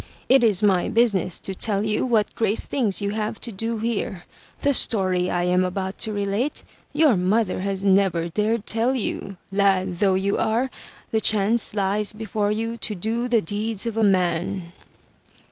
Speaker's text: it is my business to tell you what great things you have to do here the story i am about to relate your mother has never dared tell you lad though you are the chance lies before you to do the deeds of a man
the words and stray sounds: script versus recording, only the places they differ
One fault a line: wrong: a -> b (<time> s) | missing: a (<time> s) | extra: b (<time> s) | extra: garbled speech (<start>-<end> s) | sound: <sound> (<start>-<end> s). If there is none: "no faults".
no faults